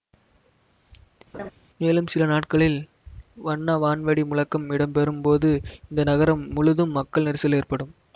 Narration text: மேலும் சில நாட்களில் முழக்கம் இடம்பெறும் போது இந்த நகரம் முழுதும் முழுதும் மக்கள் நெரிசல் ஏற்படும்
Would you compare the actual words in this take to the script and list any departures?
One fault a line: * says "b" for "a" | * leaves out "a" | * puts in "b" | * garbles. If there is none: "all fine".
* puts in "வண்ண வான்வெடி"
* leaves out "முழுதும்"